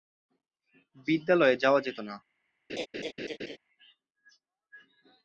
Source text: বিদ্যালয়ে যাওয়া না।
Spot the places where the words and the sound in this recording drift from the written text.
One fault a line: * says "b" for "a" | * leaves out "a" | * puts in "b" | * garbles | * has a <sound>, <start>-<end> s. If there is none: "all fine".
* puts in "যেত"
* has a laugh, 2.7-3.6 s